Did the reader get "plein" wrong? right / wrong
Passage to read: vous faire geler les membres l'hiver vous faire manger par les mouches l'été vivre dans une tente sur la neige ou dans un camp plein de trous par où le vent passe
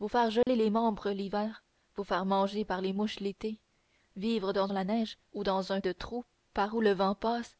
wrong